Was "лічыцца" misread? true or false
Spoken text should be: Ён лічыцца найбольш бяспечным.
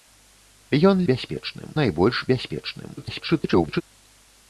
true